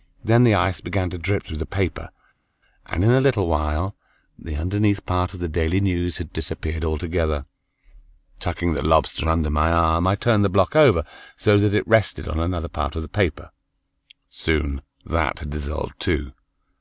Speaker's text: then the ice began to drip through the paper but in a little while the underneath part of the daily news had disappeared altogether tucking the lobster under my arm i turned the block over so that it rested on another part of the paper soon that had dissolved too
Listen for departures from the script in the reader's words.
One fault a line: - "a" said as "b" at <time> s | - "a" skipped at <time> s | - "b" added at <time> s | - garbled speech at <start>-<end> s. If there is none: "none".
- "but" said as "and" at 2.9 s